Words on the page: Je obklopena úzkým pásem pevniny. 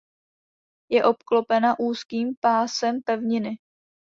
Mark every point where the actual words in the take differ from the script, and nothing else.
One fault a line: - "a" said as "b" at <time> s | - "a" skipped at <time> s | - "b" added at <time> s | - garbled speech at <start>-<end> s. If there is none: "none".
none